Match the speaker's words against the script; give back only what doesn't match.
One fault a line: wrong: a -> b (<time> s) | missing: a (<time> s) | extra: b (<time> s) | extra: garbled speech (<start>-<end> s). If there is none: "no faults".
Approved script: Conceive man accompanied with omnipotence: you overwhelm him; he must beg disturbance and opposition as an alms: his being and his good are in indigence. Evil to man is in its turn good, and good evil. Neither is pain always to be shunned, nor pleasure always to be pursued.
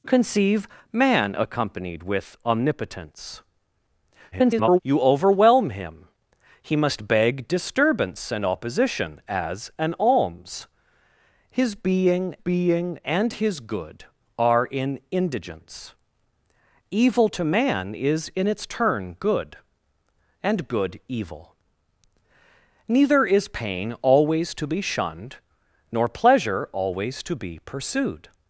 extra: garbled speech (4.3-4.8 s)
extra: being (12.4 s)